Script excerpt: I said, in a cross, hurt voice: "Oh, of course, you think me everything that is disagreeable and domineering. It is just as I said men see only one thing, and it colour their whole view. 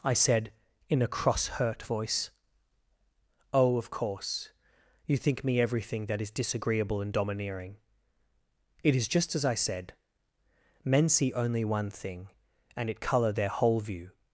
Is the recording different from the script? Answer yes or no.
no